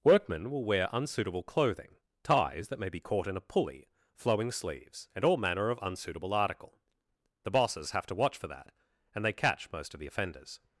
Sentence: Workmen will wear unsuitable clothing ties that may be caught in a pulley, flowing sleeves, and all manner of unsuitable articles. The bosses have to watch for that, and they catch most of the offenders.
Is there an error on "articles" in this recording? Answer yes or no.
yes